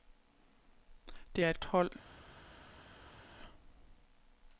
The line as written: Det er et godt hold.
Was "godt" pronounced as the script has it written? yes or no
no